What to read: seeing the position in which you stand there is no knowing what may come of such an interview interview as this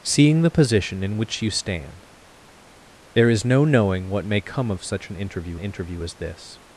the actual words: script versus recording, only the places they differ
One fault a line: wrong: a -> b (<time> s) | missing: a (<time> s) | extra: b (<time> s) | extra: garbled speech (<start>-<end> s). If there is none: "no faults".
no faults